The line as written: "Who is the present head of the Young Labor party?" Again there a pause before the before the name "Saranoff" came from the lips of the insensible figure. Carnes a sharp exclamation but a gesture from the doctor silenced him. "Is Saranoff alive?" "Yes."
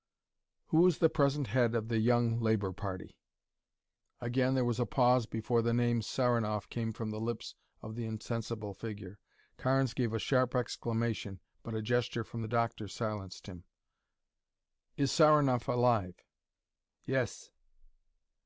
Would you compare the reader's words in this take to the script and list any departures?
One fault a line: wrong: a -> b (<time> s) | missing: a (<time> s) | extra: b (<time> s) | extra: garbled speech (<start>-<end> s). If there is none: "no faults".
extra: was (4.7 s)
missing: before the (5.8 s)
extra: gave (9.9 s)